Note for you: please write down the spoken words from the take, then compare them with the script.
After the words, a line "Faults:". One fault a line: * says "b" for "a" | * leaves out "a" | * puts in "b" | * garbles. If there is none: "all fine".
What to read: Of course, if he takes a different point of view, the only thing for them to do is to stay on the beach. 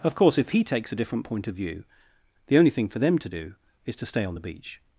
Of course, if he takes a different point of view, the only thing for them to do is to stay on the beach.
Faults:
all fine